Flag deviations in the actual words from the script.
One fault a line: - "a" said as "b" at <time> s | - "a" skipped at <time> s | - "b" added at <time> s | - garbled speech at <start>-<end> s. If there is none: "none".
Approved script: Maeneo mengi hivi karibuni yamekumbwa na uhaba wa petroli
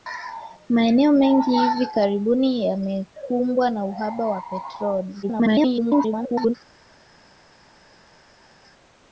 - garbled speech at 5.2-6.5 s